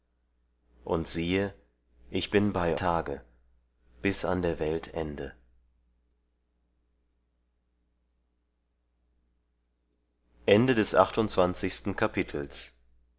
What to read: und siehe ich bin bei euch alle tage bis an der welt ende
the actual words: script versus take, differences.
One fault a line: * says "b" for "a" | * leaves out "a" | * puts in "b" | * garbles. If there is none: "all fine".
* leaves out "euch alle"